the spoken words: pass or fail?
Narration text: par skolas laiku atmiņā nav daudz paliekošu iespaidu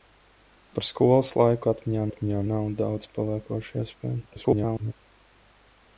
fail